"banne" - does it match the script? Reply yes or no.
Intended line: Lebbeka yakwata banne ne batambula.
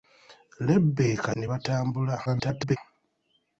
no